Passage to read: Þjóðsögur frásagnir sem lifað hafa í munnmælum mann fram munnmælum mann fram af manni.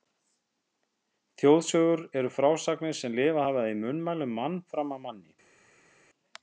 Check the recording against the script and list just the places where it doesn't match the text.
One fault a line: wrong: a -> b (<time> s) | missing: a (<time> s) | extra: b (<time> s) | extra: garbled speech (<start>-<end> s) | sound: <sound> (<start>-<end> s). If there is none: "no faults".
extra: eru (2.2 s)
missing: munnmælum mann fram (5.0 s)